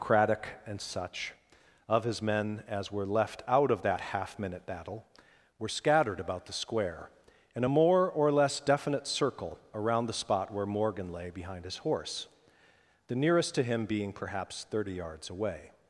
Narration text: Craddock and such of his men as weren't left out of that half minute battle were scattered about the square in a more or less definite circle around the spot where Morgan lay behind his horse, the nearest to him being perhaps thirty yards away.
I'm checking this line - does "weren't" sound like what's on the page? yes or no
no